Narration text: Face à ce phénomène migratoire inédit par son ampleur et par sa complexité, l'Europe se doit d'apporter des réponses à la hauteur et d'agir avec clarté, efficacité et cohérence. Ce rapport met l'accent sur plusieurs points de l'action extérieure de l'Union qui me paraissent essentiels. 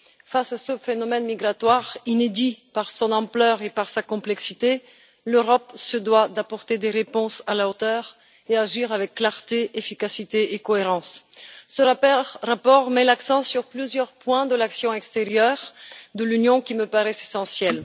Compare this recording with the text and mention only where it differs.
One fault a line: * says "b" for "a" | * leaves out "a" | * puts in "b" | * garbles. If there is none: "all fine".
all fine